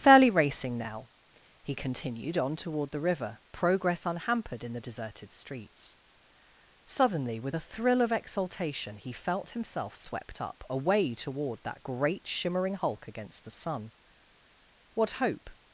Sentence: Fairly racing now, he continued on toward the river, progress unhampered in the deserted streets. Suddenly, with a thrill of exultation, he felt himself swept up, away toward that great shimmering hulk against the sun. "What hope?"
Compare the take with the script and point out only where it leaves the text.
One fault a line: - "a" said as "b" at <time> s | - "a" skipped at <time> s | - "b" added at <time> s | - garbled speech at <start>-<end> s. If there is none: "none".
none